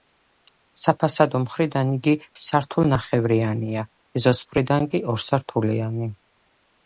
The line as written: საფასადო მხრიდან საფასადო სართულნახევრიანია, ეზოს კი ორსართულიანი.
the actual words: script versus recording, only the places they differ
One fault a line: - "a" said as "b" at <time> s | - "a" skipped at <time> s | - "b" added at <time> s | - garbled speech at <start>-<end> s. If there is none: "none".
- "საფასადო" said as "იგი" at 2.0 s
- "მხრიდან" added at 4.5 s